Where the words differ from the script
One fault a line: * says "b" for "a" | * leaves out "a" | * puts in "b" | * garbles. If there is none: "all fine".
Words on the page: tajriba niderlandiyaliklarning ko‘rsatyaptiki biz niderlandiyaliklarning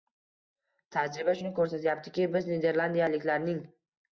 * says "shuni" for "niderlandiyaliklarning"